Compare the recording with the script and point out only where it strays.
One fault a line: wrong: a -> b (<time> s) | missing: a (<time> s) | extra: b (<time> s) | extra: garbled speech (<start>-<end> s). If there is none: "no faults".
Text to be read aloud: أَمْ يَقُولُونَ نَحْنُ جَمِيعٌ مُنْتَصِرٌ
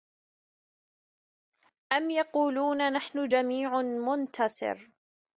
no faults